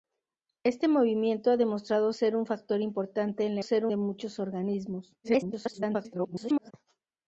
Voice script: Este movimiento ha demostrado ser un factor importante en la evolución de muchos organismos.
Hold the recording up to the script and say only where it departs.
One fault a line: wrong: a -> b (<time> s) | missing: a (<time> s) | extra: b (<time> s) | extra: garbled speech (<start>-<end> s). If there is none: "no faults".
wrong: evolución -> ser (3.6 s)
extra: garbled speech (5.2-6.7 s)